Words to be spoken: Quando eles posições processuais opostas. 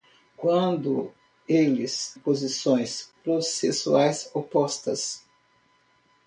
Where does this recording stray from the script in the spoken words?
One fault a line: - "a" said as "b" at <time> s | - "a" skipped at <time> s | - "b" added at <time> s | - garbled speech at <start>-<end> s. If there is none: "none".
none